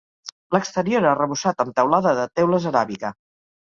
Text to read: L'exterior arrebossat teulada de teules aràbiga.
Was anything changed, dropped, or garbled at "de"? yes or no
no